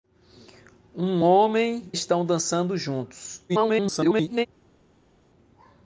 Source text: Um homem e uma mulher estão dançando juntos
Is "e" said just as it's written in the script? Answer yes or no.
no